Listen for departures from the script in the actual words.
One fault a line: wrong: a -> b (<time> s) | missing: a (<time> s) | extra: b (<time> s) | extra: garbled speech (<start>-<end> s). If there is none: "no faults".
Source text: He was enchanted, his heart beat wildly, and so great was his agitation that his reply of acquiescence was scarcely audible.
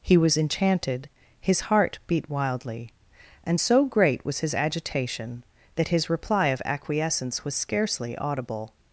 no faults